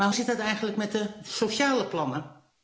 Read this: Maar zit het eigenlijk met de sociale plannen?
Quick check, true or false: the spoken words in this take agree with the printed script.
true